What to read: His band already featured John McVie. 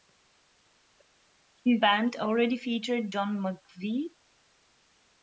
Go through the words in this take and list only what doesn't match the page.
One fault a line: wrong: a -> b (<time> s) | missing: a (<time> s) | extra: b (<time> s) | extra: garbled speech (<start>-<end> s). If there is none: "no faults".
no faults